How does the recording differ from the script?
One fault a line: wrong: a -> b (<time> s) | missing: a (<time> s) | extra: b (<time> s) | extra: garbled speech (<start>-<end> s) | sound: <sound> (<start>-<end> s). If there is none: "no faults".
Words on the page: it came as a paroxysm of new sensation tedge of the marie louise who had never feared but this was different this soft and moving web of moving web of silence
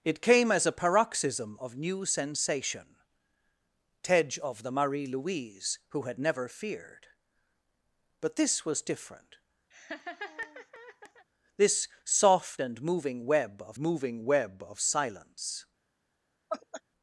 sound: laugh (9.7-11.3 s)
sound: laugh (16.5-16.8 s)